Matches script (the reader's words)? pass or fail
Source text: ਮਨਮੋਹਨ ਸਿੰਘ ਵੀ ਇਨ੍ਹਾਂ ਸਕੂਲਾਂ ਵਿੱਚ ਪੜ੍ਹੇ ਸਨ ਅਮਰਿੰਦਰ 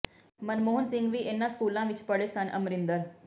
pass